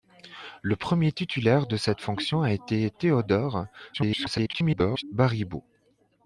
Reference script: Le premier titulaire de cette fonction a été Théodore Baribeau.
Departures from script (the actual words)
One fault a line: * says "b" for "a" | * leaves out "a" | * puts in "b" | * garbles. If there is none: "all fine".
* garbles